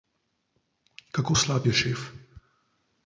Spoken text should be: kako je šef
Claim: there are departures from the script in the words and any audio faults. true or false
true